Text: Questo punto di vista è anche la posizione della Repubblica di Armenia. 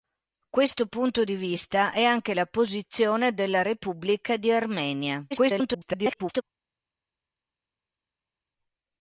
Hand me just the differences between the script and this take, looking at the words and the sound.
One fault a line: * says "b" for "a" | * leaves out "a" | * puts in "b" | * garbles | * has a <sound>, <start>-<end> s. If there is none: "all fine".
* garbles